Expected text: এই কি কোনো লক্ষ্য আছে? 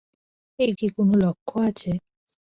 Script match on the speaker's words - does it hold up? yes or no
yes